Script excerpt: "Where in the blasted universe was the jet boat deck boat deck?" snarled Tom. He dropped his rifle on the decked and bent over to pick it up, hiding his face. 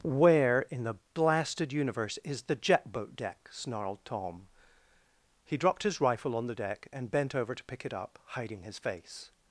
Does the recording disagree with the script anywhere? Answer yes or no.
yes